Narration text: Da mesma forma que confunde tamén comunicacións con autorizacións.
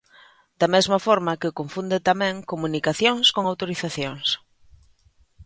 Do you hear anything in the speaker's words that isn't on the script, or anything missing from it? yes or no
no